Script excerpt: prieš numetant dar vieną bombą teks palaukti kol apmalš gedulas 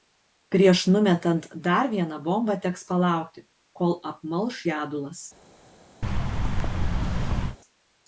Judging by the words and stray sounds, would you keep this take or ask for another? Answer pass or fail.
fail